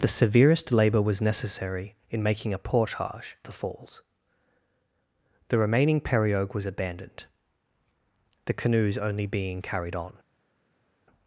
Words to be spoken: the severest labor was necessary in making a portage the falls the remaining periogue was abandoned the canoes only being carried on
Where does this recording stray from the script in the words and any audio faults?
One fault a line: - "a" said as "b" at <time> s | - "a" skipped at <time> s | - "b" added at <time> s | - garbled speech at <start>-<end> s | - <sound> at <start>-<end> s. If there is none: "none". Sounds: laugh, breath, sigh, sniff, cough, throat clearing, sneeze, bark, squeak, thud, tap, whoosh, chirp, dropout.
none